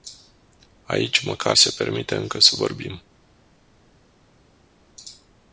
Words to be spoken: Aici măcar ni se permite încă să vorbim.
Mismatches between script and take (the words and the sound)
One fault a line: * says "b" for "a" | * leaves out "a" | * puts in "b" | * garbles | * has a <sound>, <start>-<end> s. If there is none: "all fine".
* leaves out "ni"